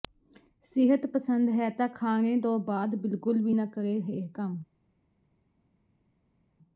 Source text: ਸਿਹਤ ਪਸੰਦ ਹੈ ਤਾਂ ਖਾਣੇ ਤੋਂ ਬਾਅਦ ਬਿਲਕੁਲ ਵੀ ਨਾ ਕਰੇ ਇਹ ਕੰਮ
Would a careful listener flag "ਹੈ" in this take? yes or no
no